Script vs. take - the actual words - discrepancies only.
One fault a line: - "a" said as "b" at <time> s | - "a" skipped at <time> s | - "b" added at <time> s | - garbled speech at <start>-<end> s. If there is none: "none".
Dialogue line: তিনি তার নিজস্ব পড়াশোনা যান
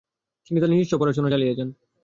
- "চালিয়ে" added at 1.3 s